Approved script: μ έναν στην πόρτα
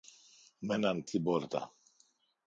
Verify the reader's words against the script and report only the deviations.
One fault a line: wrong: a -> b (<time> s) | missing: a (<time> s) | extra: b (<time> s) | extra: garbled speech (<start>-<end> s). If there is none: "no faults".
no faults